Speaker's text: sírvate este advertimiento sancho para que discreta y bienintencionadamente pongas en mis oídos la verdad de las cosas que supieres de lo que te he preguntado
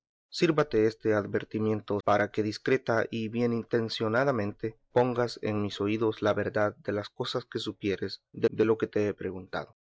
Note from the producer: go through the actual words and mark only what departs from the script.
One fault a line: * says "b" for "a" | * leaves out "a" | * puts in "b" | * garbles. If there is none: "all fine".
* leaves out "sancho"
* puts in "de"